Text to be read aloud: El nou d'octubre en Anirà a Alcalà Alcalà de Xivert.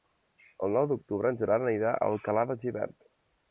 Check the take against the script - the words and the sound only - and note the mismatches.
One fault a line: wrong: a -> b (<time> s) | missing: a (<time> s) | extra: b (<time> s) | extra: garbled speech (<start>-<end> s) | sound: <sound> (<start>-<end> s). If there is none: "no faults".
extra: Gerard (1.4 s)
missing: Alcalà (2.5 s)